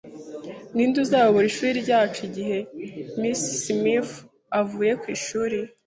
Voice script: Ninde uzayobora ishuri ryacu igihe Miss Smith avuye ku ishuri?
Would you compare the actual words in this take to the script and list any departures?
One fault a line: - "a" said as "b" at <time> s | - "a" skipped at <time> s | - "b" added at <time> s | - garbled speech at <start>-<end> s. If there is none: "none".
none